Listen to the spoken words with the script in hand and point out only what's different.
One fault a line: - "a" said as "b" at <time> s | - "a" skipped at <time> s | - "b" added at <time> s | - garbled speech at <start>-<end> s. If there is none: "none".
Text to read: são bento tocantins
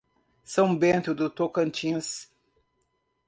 - "do" added at 1.1 s